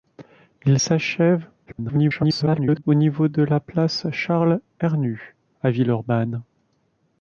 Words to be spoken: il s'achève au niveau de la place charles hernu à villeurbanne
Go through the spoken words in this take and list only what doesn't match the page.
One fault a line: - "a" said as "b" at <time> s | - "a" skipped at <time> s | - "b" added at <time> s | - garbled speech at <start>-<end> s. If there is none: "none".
- garbled speech at 1.7-2.8 s